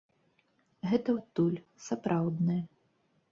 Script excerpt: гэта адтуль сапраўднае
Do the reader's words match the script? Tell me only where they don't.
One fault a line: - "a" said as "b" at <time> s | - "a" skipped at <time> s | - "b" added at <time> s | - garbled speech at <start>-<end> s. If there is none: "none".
none